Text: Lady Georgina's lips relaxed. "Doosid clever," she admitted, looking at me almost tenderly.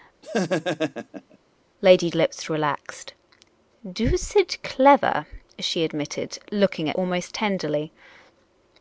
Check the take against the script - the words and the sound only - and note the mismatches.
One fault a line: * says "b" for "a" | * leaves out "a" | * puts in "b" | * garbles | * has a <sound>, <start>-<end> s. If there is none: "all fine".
* has a laugh, 0.2-1.4 s
* leaves out "Georgina's"
* leaves out "me"